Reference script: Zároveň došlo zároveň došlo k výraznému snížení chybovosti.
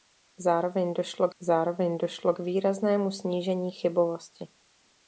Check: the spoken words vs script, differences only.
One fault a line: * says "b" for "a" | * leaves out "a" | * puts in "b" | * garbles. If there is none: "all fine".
all fine